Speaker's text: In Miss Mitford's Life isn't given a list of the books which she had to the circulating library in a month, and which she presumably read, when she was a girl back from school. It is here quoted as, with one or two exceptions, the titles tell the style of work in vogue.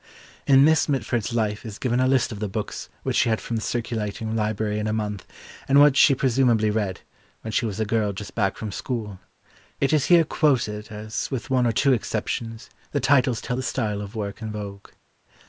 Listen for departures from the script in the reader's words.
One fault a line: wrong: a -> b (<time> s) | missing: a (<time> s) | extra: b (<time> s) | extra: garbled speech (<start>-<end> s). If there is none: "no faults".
wrong: isn't -> is (1.6 s)
wrong: to -> from (3.4 s)
extra: just (8.1 s)